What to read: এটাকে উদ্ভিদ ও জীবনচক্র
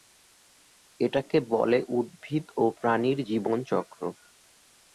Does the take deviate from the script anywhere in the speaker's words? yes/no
yes